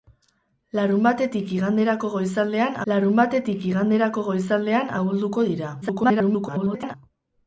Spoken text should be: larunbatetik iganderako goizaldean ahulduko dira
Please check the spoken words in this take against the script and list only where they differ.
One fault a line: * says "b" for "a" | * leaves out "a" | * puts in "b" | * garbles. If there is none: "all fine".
* puts in "larunbatetik iganderako goizaldean"
* garbles